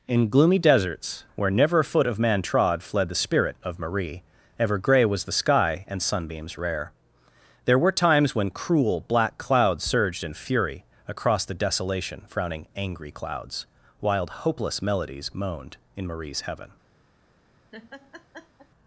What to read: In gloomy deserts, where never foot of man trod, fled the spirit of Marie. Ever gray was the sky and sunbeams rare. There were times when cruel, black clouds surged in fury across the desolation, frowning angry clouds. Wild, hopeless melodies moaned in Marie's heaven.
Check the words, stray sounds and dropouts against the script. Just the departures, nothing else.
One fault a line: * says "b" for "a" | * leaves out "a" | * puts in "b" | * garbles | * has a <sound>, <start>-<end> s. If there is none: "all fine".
* puts in "a"
* has a laugh, 17.7-18.7 s